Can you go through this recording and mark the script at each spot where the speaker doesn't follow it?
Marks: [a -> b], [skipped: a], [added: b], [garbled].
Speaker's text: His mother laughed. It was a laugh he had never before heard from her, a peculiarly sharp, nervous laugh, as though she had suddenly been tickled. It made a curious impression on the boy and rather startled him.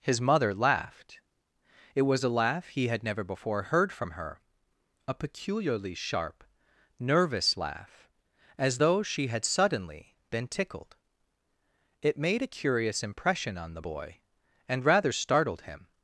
His mother laughed. It was a laugh he had never before heard from her, a peculiarly sharp, nervous laugh, as though she had suddenly been tickled. It made a curious impression on the boy and rather startled him.